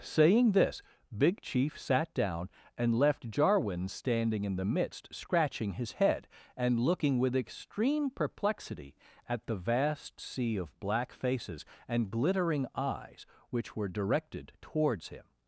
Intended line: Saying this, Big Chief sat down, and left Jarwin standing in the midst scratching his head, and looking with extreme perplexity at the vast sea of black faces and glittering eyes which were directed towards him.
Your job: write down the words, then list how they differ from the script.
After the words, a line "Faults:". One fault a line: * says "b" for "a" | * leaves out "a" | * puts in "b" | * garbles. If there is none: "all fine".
Saying this, Big Chief sat down, and left Jarwin standing in the midst scratching his head, and looking with extreme perplexity at the vast sea of black faces and glittering eyes which were directed towards him.
Faults:
all fine